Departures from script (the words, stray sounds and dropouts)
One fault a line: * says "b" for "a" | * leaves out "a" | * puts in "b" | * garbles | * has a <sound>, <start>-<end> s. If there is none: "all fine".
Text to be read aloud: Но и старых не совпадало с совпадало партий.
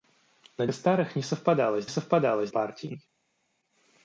all fine